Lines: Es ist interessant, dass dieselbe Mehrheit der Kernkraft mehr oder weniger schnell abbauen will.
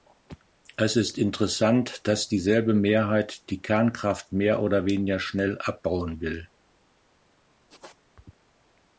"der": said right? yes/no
no